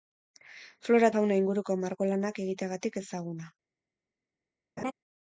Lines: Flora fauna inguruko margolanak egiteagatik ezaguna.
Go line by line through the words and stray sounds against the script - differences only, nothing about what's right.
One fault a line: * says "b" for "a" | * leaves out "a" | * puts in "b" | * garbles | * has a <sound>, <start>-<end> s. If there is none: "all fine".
* has a laugh, 4.8-4.9 s